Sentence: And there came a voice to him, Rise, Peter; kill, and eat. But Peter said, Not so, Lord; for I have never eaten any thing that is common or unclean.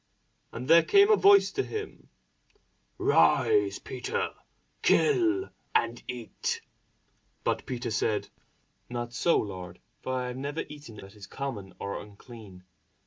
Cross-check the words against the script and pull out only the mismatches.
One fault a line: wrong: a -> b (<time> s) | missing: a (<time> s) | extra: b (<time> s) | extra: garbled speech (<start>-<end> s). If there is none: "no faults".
missing: any thing (11.0 s)